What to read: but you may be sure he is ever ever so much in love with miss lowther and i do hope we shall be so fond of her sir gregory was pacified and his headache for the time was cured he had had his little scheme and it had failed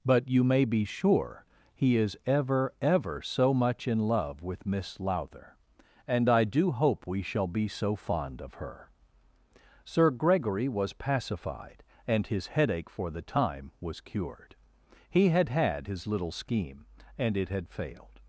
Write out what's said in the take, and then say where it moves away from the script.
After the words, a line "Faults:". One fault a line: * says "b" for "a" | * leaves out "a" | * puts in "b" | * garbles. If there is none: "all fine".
but you may be sure he is ever ever so much in love with miss lowther and i do hope we shall be so fond of her sir gregory was pacified and his headache for the time was cured he had had his little scheme and it had failed
Faults:
all fine